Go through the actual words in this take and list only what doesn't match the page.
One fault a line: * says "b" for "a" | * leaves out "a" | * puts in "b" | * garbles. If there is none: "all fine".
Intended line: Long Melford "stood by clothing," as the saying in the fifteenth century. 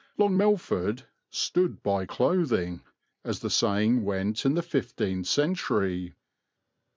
* puts in "went"